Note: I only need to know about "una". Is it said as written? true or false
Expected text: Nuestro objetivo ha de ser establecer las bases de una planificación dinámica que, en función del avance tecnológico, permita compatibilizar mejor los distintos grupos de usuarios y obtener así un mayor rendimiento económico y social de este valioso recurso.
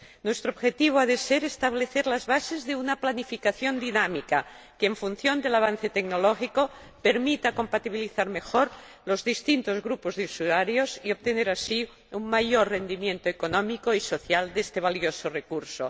true